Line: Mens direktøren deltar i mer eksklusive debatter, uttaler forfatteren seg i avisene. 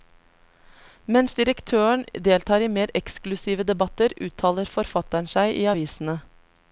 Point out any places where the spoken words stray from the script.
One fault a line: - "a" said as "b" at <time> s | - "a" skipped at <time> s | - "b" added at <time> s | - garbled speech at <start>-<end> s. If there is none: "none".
none